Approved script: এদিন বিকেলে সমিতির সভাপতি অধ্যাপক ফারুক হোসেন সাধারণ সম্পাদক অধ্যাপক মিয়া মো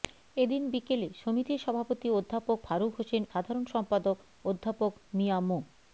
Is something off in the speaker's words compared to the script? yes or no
no